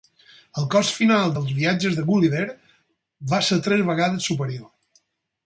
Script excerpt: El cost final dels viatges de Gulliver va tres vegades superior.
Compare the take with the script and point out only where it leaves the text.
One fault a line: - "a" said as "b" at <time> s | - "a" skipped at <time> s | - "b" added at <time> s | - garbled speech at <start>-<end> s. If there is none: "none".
- "ser" added at 3.5 s